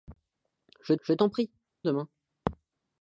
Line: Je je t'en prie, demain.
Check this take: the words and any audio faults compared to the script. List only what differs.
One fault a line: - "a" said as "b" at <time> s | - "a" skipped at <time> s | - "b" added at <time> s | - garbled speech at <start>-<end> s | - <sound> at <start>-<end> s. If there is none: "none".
none